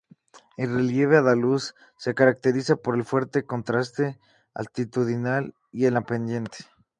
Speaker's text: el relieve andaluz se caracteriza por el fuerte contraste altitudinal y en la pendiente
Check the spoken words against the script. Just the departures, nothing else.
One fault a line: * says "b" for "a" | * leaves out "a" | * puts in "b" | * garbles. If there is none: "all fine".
all fine